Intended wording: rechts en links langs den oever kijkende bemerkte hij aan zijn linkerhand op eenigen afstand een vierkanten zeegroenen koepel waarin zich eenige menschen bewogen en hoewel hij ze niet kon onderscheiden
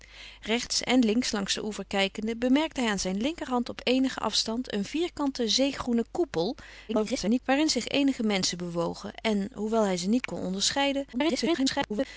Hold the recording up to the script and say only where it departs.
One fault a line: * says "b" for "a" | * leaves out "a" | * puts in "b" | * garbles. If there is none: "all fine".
* garbles
* garbles